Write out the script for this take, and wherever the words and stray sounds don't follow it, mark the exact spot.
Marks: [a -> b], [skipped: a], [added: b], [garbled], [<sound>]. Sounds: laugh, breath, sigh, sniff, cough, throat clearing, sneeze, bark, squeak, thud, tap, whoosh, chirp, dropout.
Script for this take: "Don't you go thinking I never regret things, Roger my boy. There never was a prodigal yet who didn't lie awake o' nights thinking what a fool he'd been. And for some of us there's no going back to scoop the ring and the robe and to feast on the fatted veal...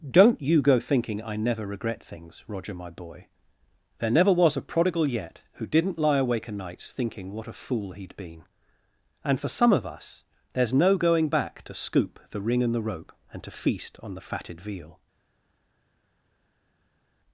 "Don't you go thinking I never regret things, Roger my boy. There never was a prodigal yet who didn't lie awake o' nights thinking what a fool he'd been. And for some of us there's no going back to scoop the ring and the [robe -> rope] and to feast on the fatted veal...